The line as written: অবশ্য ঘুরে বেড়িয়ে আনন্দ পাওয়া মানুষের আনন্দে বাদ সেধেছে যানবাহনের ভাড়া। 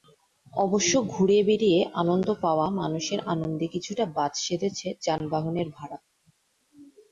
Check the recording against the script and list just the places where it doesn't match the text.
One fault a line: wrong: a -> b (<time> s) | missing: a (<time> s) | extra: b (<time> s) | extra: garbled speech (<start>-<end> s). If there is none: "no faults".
extra: কিছুটা (3.7 s)